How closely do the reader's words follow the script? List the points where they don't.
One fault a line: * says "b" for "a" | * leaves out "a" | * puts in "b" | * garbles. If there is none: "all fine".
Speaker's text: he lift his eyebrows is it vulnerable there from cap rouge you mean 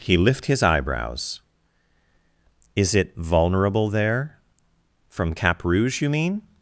all fine